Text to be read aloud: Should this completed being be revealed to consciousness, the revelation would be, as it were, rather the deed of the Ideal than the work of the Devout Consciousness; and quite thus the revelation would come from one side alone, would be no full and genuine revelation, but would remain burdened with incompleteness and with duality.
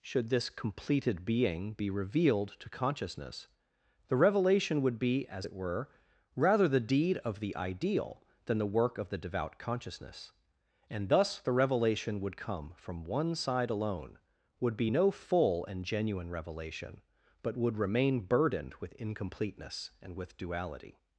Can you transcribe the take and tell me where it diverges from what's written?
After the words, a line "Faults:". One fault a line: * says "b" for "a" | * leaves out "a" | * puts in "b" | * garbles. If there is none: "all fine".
Should this completed being be revealed to consciousness, the revelation would be, as it were, rather the deed of the Ideal than the work of the Devout Consciousness; and thus the revelation would come from one side alone, would be no full and genuine revelation, but would remain burdened with incompleteness and with duality.
Faults:
* leaves out "quite"